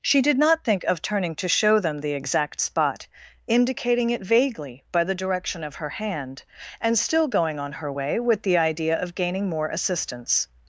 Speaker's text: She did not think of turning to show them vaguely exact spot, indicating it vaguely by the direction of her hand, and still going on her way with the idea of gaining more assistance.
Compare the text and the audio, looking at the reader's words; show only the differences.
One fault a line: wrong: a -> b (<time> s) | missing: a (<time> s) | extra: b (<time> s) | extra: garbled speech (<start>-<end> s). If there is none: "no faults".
wrong: vaguely -> the (2.0 s)